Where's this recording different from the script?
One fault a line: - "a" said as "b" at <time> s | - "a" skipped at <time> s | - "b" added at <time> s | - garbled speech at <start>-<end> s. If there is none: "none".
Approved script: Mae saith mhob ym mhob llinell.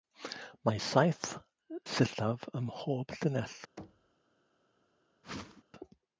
- "mhob" said as "sillaf" at 1.9 s